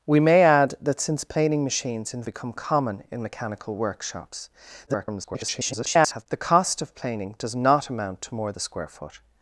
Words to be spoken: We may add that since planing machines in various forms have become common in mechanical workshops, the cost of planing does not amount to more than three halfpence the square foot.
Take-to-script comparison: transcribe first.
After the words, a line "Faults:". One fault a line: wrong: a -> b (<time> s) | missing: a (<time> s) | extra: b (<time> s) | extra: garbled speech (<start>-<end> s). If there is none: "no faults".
We may add that since planing machines in become common in mechanical workshops, [garbled] the cost of planing does not amount to more the square foot.
Faults:
missing: various forms have (2.2 s)
extra: garbled speech (4.9-6.3 s)
missing: than three halfpence (8.5 s)